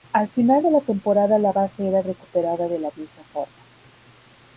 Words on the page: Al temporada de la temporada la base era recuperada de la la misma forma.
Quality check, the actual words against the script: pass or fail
fail